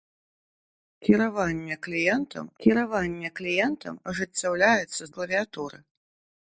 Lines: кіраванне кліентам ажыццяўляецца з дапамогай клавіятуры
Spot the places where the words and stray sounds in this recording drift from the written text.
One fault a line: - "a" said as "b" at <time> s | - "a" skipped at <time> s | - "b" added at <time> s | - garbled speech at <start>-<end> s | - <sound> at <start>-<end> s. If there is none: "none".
- "кіраванне кліентам" added at 2.6 s
- "дапамогай" skipped at 5.1 s